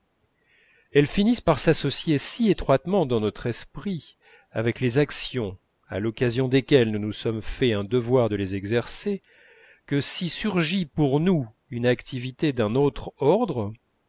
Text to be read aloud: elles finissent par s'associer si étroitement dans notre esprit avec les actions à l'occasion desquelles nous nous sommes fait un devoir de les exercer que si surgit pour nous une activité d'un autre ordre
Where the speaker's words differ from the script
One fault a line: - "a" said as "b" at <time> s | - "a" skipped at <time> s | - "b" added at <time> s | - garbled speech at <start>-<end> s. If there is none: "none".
none